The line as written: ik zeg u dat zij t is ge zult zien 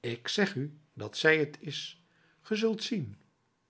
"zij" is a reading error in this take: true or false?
false